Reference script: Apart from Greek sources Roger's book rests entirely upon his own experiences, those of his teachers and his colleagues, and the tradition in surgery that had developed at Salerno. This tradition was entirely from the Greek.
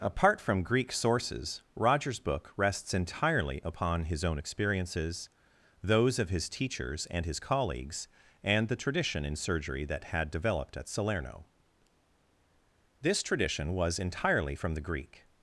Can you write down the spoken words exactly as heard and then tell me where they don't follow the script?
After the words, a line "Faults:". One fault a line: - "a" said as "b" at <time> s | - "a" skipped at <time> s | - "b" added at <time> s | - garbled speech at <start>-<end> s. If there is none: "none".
Apart from Greek sources Roger's book rests entirely upon his own experiences, those of his teachers and his colleagues, and the tradition in surgery that had developed at Salerno. This tradition was entirely from the Greek.
Faults:
none